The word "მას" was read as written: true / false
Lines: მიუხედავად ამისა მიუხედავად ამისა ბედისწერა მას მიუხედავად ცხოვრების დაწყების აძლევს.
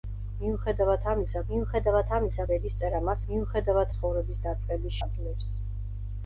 true